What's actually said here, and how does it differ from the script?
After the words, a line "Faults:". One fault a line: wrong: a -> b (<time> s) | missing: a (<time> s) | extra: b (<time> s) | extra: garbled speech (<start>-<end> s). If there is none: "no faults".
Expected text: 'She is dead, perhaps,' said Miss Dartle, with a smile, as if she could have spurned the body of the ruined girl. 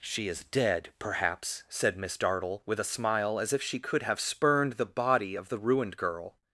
'She is dead, perhaps,' said Miss Dartle, with a smile, as if she could have spurned the body of the ruined girl.
Faults:
no faults